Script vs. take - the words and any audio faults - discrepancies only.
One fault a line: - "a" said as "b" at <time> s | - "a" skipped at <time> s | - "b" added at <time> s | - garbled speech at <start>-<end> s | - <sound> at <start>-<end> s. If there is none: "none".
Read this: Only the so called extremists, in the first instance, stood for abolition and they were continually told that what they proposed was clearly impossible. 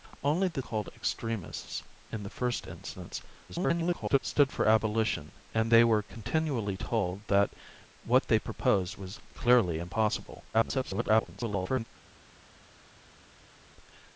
- "so" skipped at 0.6 s
- garbled speech at 3.5-4.2 s
- garbled speech at 10.5-11.8 s